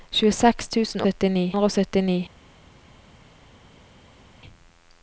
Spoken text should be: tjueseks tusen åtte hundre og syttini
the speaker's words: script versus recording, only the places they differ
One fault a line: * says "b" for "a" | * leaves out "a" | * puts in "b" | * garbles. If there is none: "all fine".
* says "syttini" for "åtte"